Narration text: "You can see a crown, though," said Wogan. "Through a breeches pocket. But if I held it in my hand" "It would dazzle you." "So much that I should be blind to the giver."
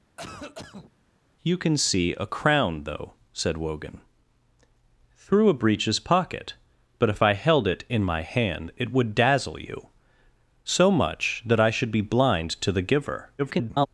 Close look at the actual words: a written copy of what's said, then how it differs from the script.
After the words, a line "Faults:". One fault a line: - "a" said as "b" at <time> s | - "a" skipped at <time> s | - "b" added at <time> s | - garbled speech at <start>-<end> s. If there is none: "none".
"You can see a crown, though," said Wogan. "Through a breeches pocket. But if I held it in my hand" "It would dazzle you." "So much that I should be blind to the giver." [garbled]
Faults:
- garbled speech at 13.4-13.9 s